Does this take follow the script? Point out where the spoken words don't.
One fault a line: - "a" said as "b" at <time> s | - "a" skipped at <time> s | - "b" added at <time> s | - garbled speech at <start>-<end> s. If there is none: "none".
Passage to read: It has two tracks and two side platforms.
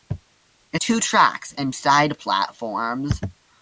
- "has" skipped at 0.8 s
- "two" skipped at 1.7 s